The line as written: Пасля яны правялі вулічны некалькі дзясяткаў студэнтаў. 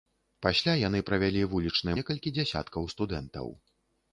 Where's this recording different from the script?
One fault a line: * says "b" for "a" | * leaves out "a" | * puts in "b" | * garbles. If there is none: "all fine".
all fine